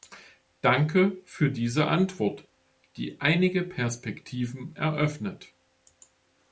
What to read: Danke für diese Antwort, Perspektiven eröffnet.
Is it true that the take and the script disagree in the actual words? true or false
true